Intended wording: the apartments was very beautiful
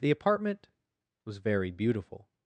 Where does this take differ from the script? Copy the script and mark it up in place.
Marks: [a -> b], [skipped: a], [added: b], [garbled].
the [apartments -> apartment] was very beautiful